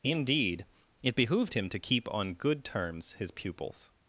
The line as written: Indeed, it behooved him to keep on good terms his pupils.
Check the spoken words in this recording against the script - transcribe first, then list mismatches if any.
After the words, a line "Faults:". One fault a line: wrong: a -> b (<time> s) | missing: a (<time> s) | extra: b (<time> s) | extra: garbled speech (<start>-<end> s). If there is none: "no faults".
Indeed, it behooved him to keep on good terms his pupils.
Faults:
no faults